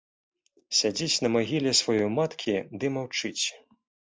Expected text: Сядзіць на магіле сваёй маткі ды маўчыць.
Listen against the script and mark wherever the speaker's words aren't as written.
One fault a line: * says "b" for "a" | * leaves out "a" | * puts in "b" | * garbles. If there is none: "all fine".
all fine